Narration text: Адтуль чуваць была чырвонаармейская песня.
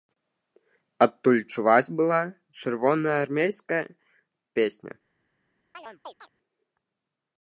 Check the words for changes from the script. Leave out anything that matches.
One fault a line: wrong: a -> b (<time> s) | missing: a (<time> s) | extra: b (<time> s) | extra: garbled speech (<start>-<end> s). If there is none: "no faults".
no faults